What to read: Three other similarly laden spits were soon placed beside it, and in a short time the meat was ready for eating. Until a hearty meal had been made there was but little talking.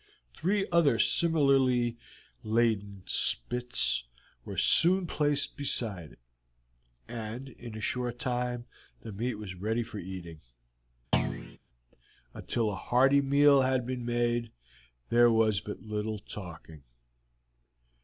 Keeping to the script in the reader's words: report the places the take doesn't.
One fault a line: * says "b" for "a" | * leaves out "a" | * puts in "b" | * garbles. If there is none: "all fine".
all fine